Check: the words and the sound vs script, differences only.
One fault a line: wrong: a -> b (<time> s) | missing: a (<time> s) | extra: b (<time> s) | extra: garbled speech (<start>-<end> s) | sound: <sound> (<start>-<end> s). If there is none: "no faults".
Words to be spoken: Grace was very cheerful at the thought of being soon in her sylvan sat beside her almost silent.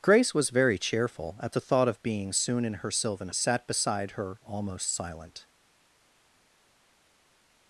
no faults